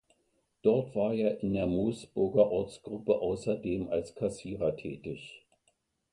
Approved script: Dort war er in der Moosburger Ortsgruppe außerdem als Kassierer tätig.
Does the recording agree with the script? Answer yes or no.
yes